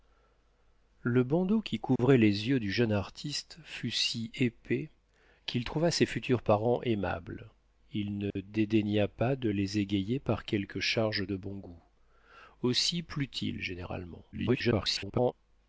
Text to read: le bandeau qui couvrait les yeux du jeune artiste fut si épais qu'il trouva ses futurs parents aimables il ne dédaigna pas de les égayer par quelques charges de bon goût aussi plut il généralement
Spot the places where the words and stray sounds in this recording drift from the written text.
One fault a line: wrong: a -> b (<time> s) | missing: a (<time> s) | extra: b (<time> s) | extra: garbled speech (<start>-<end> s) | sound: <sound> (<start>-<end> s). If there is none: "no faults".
sound: dropout (2.0-2.0 s)
sound: dropout (8.3-8.4 s)
extra: garbled speech (14.3-15.3 s)